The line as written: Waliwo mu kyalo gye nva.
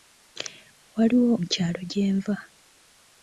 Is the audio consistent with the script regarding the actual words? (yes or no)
yes